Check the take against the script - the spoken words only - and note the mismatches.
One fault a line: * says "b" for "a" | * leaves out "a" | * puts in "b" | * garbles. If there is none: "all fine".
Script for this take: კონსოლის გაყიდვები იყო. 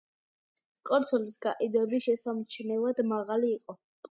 * puts in "შესამჩნევად მაღალი"